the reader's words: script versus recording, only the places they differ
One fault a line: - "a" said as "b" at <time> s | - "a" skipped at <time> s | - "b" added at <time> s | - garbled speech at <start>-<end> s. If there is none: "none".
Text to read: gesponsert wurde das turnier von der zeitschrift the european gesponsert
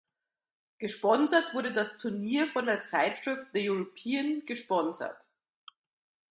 none